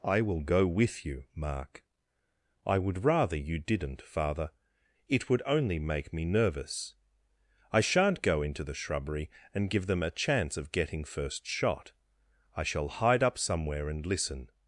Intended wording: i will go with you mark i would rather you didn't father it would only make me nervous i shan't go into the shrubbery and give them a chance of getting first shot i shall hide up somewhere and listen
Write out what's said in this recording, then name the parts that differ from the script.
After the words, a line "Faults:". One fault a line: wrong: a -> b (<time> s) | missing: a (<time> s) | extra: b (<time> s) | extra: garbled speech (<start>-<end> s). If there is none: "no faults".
i will go with you mark i would rather you didn't father it would only make me nervous i shan't go into the shrubbery and give them a chance of getting first shot i shall hide up somewhere and listen
Faults:
no faults